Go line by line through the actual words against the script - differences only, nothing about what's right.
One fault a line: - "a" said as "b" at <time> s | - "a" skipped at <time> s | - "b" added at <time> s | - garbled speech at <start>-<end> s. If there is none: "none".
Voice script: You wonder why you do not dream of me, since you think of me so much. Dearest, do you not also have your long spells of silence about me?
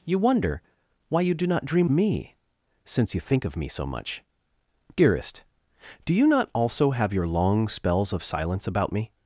- "of" skipped at 1.9 s